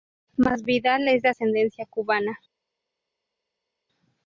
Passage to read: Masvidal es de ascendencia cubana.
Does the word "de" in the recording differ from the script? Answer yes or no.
no